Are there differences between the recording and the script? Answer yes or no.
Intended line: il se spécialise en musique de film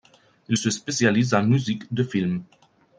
no